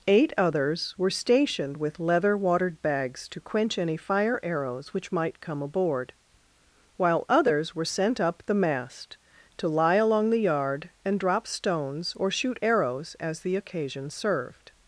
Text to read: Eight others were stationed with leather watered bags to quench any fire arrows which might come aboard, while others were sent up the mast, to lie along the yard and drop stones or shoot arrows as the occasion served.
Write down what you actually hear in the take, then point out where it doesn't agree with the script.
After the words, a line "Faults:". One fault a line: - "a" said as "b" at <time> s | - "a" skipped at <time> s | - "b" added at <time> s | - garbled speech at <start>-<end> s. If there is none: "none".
Eight others were stationed with leather watered bags to quench any fire arrows which might come aboard, while others were sent up the mast, to lie along the yard and drop stones or shoot arrows as the occasion served.
Faults:
none